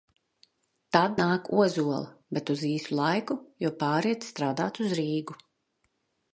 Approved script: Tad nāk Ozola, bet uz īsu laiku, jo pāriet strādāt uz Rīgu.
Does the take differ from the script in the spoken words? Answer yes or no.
no